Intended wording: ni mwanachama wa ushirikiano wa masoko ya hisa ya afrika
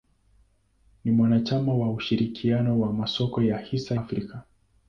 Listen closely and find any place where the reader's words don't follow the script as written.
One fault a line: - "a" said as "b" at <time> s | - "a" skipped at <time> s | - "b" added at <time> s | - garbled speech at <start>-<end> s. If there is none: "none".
- "ya" skipped at 4.0 s